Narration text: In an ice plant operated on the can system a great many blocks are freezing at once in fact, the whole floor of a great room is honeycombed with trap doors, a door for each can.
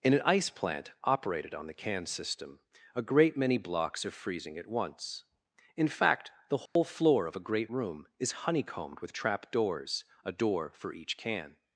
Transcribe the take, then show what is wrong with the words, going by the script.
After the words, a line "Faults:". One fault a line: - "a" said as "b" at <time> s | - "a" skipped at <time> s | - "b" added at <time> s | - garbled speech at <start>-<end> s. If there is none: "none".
In an ice plant operated on the can system a great many blocks are freezing at once in fact, the whole floor of a great room is honeycombed with trap doors, a door for each can.
Faults:
none